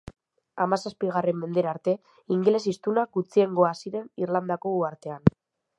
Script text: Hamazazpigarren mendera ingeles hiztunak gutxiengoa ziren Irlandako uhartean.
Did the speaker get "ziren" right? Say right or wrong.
right